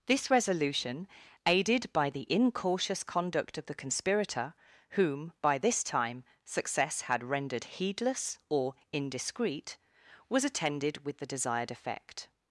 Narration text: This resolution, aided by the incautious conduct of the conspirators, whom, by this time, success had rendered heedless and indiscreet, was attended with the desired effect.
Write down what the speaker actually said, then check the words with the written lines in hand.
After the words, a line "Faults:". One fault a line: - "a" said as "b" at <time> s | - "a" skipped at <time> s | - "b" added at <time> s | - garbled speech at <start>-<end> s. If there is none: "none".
This resolution, aided by the incautious conduct of the conspirator, whom, by this time, success had rendered heedless or indiscreet, was attended with the desired effect.
Faults:
- "conspirators" said as "conspirator" at 3.7 s
- "and" said as "or" at 8.5 s